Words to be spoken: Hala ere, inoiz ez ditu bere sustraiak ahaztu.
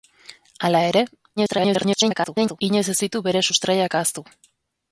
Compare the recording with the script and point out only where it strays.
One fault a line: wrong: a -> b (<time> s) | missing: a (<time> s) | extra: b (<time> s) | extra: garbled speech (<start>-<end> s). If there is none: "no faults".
extra: garbled speech (1.4-2.6 s)